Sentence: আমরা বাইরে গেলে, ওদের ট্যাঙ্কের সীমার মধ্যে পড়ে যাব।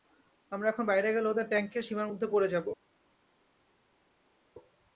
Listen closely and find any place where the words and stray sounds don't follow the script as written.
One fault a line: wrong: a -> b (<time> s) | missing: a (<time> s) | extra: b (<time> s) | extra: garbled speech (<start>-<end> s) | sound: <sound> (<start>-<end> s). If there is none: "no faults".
extra: এখন (0.7 s)